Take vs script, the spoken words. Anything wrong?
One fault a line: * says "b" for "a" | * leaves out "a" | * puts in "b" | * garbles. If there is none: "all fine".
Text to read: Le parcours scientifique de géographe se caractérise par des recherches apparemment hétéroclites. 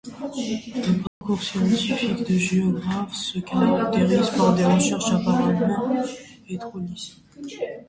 all fine